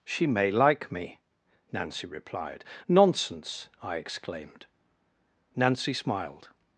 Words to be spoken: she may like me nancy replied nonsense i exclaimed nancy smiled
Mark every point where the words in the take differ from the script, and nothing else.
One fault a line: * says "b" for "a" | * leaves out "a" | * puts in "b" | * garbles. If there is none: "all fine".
all fine